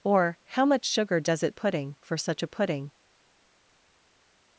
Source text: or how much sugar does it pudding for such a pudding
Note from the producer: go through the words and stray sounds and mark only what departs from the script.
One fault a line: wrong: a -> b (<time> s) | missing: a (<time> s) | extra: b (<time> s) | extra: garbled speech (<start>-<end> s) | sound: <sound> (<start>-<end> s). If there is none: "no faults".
no faults